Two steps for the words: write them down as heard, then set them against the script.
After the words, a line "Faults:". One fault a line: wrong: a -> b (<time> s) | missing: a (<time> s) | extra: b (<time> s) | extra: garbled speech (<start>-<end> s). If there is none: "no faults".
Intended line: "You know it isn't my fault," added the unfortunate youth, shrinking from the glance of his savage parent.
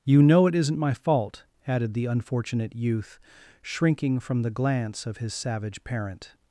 "You know it isn't my fault," added the unfortunate youth, shrinking from the glance of his savage parent.
Faults:
no faults